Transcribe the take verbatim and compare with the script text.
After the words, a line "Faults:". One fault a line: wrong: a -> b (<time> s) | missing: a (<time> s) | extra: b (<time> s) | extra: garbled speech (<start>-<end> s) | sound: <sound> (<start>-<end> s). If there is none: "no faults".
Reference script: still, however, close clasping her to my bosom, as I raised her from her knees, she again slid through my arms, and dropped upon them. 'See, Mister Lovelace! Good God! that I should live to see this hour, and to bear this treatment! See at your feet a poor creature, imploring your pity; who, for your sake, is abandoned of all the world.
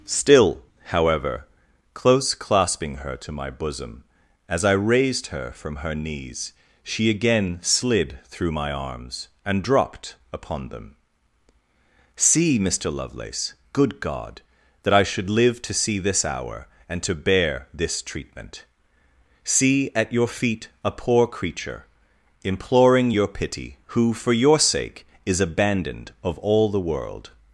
still, however, close clasping her to my bosom, as I raised her from her knees, she again slid through my arms, and dropped upon them. 'See, Mister Lovelace! Good God! that I should live to see this hour, and to bear this treatment! See at your feet a poor creature, imploring your pity; who, for your sake, is abandoned of all the world.
Faults:
no faults